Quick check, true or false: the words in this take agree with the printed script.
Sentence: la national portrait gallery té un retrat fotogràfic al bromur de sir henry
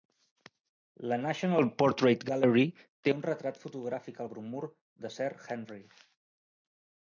true